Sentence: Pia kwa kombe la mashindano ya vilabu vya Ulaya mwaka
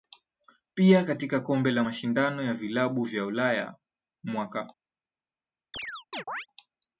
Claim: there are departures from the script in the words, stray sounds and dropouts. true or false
true